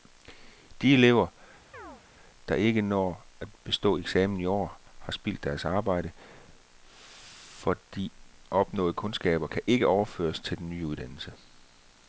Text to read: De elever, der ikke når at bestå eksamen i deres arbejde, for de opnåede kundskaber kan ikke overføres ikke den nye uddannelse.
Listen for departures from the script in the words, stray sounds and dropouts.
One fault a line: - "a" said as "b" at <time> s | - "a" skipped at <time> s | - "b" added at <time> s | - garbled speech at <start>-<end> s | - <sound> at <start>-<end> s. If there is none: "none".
- chirp at 1.7-2.0 s
- "år har spildt" added at 4.4 s
- "ikke" said as "til" at 10.4 s